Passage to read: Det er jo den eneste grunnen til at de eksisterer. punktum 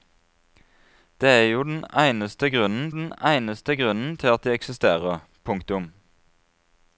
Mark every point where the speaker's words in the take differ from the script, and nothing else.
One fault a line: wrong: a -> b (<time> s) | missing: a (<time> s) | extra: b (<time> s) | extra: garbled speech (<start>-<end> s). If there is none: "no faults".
extra: den eneste grunnen (2.9 s)